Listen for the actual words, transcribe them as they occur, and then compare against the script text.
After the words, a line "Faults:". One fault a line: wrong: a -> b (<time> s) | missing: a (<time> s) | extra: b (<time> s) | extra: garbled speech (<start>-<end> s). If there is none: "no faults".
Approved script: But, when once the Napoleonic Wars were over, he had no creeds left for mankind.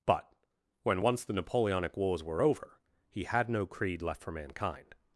But, when once the Napoleonic Wars were over, he had no creed left for mankind.
Faults:
wrong: creeds -> creed (3.6 s)